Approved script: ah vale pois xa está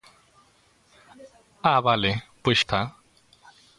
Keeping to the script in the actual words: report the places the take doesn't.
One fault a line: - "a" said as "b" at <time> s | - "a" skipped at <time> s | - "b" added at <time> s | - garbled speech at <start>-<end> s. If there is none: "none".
- "xa" skipped at 2.6 s